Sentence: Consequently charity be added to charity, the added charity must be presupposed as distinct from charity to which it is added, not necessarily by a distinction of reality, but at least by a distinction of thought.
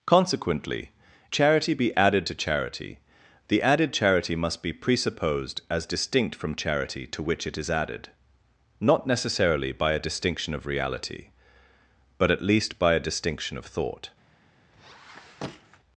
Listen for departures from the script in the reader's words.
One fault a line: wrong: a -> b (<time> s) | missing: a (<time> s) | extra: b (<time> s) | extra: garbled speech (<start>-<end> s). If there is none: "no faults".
no faults